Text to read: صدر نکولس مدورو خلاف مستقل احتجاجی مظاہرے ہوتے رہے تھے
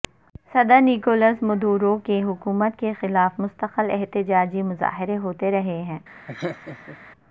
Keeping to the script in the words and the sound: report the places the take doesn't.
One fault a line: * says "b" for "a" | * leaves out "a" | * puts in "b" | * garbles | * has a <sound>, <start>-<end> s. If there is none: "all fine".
* puts in "کی حکومت کے"
* says "ہیں" for "تھے"
* has a laugh, 6.3-7.0 s